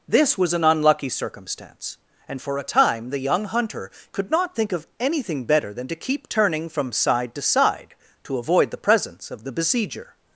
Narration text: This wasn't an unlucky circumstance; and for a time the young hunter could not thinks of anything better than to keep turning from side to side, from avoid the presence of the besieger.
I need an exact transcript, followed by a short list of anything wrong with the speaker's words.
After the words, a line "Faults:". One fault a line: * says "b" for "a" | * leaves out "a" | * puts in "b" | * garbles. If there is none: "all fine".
This was an unlucky circumstance; and for a time the young hunter could not think of anything better than to keep turning from side to side, to avoid the presence of the besieger.
Faults:
* says "was" for "wasn't"
* says "think" for "thinks"
* says "to" for "from"